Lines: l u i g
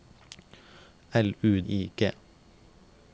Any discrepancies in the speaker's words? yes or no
no